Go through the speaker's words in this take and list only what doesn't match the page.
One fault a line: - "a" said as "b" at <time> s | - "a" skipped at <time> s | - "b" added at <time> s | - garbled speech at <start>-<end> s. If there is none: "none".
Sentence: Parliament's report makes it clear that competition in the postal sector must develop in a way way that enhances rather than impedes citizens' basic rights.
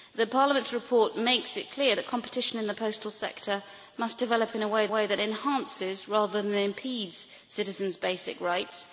none